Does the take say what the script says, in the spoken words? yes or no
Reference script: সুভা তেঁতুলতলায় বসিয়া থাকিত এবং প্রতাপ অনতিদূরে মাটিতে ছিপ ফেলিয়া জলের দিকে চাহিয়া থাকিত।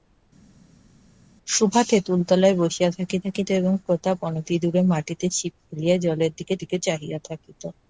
no